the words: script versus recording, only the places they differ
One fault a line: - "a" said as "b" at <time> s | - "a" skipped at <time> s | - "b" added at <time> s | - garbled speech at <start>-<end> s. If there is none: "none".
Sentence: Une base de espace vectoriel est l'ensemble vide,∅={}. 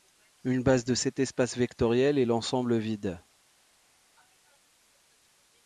- "cet" added at 0.9 s